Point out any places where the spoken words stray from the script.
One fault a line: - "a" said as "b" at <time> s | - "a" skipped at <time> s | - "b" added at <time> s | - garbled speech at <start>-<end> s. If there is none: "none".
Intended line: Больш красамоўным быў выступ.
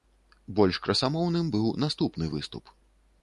- "наступны" added at 1.9 s